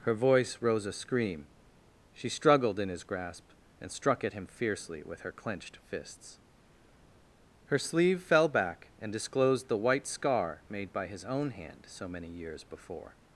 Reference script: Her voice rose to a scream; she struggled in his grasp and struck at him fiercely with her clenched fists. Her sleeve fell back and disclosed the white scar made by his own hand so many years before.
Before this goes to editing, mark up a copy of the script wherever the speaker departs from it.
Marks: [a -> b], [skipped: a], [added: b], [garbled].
Her voice rose [skipped: to] a scream; she struggled in his grasp and struck at him fiercely with her clenched fists. Her sleeve fell back and disclosed the white scar made by his own hand so many years before.